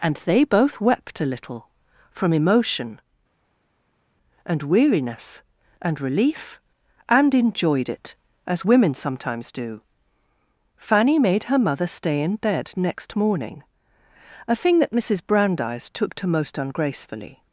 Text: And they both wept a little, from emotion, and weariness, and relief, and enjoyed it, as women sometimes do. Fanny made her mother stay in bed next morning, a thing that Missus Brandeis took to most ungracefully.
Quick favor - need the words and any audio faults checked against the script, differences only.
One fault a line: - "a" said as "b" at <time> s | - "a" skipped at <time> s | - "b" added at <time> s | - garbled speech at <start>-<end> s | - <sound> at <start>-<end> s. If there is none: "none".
none